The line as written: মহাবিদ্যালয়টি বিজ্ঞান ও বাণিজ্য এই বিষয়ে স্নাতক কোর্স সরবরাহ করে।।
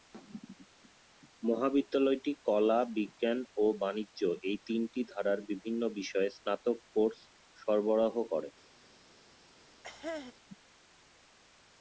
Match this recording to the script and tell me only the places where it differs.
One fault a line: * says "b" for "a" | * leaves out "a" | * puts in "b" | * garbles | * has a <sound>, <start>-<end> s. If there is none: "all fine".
* puts in "কলা"
* puts in "তিনটি ধারার বিভিন্ন"
* has a cough, 9.8-10.3 s